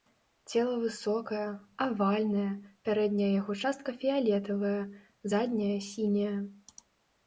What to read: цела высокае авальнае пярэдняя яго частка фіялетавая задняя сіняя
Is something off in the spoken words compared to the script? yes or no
no